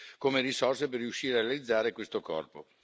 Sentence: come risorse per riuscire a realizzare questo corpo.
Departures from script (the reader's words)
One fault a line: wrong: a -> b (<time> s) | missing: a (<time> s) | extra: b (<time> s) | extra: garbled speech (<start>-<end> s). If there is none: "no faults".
no faults